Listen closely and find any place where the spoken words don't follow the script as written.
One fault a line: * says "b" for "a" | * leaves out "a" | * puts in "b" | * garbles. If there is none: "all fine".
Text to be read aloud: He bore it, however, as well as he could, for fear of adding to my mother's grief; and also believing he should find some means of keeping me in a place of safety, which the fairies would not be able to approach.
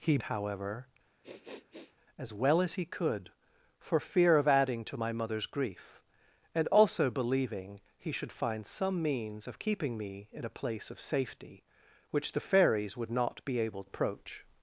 * leaves out "bore it"
* leaves out "to"